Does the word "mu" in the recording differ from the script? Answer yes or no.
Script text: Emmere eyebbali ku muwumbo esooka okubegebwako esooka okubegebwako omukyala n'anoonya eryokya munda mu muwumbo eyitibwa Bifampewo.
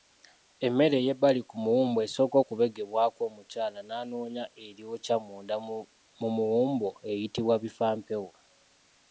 no